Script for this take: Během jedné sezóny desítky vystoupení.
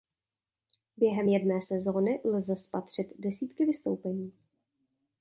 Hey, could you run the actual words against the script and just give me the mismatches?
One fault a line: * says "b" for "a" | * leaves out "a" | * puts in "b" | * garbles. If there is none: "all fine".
* puts in "lze spatřit"